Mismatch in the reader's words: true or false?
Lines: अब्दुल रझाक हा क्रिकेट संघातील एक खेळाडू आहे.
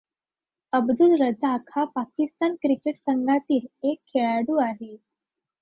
true